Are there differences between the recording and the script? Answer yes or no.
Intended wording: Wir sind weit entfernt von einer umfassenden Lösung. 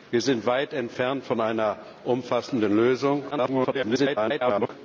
yes